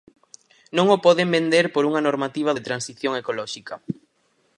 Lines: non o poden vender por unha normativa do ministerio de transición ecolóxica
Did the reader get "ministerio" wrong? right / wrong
wrong